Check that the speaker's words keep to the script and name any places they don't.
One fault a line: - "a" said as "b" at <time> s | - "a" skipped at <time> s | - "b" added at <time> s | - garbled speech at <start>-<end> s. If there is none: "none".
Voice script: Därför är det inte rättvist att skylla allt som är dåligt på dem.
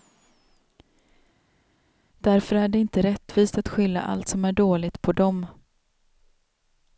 none